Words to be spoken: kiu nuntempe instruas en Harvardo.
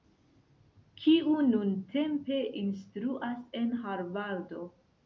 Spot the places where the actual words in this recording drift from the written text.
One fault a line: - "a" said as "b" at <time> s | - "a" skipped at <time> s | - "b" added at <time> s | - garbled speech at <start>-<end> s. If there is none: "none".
none